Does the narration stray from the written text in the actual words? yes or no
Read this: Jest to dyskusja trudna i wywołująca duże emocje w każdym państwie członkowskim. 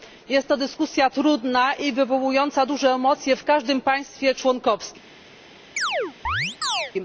no